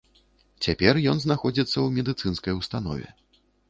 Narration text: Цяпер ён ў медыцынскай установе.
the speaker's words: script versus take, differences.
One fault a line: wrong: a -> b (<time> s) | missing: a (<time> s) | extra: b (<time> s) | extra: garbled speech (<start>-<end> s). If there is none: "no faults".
extra: знаходзіцца (1.2 s)